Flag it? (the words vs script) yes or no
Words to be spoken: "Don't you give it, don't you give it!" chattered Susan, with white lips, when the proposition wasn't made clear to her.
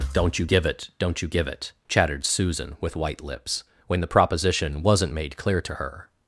no